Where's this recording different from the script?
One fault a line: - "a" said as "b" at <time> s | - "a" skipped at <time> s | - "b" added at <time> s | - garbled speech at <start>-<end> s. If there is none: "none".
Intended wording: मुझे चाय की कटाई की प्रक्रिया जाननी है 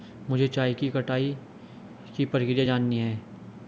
none